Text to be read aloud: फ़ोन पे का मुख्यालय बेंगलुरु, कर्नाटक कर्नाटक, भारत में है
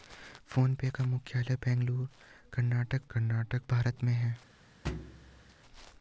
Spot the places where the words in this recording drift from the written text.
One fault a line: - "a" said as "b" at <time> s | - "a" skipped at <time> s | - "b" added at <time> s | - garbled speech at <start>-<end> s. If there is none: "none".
none